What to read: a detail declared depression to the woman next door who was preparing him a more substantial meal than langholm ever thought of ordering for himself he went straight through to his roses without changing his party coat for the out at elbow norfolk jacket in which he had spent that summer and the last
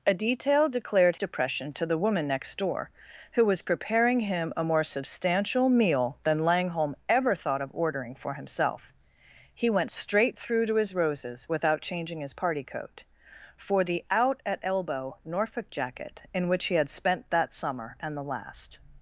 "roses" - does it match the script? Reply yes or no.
yes